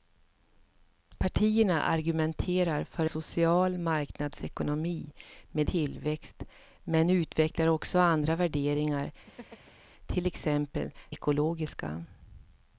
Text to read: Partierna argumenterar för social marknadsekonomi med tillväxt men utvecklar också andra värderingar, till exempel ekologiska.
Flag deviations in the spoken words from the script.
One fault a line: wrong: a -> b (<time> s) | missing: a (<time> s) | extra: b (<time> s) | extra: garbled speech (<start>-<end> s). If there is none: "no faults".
no faults